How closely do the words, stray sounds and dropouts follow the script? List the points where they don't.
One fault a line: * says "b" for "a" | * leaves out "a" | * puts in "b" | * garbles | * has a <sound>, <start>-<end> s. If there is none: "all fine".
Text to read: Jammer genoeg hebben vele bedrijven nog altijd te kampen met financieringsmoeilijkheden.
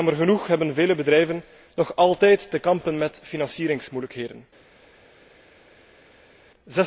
all fine